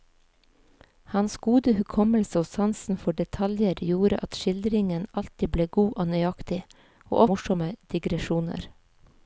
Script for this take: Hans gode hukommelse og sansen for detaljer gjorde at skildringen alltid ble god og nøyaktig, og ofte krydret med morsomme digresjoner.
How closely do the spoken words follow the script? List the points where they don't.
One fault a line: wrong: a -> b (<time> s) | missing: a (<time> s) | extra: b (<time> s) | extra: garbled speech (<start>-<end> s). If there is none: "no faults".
missing: ofte krydret med (7.2 s)